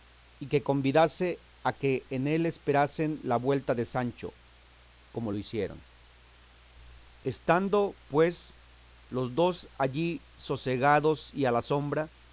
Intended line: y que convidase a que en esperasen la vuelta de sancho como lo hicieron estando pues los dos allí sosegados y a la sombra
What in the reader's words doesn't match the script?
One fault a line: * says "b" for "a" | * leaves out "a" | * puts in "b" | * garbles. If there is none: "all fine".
* puts in "él"